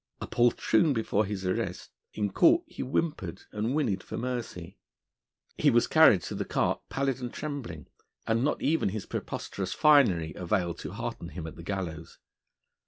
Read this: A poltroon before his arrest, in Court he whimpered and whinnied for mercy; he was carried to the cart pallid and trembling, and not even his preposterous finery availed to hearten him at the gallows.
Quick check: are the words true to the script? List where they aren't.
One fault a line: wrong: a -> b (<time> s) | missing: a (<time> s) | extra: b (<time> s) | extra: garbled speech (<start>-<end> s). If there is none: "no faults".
no faults